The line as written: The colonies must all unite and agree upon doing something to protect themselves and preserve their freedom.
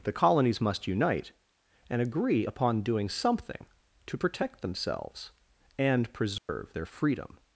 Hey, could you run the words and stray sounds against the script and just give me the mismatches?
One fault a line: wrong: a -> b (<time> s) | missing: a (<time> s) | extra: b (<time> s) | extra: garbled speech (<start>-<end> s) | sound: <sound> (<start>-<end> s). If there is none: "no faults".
missing: all (0.9 s)
sound: dropout (6.4-6.5 s)